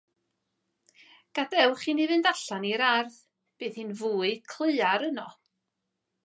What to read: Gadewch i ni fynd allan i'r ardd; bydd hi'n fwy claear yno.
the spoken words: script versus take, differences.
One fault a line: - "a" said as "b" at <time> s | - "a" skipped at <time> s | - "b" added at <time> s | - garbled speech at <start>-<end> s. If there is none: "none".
none